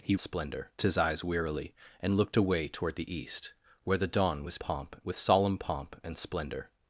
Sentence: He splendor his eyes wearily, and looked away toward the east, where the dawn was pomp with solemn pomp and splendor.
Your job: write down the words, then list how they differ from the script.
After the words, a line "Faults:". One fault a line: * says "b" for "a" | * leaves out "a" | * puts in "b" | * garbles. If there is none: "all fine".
He splendor his eyes wearily, and looked away toward the east, where the dawn was pomp with solemn pomp and splendor.
Faults:
all fine